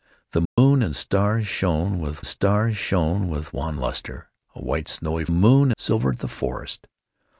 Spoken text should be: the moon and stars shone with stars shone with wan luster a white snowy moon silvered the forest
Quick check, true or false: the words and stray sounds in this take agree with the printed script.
false